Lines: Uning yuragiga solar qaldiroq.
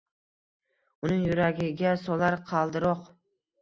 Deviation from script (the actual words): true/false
false